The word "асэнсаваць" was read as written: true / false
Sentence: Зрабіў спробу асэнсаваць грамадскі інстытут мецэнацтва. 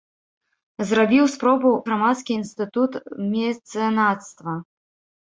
false